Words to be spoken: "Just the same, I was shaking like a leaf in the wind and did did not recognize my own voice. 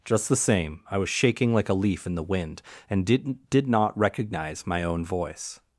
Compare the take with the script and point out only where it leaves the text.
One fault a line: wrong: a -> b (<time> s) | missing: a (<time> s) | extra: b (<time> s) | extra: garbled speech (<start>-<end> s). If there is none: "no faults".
no faults